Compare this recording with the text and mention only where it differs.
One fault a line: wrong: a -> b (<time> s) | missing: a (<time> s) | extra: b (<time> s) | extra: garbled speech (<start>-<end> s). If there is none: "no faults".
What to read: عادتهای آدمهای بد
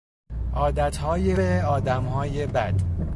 no faults